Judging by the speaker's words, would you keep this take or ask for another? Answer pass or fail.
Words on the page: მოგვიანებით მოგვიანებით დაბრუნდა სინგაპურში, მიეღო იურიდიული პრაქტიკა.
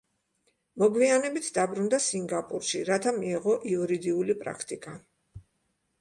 fail